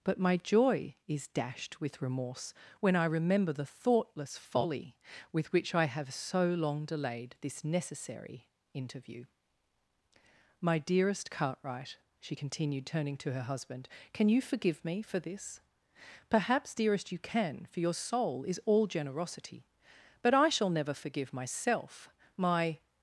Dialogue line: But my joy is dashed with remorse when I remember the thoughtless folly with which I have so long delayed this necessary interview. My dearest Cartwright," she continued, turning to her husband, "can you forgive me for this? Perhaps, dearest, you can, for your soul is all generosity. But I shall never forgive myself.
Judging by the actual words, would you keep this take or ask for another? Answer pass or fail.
fail